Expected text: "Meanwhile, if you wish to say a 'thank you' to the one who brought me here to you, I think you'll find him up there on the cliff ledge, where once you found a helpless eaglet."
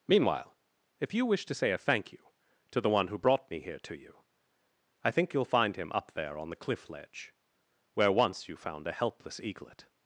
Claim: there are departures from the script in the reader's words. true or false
false